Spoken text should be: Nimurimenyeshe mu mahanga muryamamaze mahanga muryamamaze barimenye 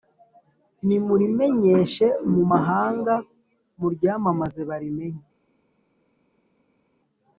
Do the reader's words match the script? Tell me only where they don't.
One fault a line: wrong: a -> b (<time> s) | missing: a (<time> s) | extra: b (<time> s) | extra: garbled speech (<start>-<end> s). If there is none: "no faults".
missing: mahanga muryamamaze (4.6 s)